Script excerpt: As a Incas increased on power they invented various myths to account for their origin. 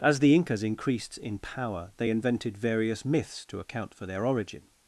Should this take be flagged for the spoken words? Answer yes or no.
yes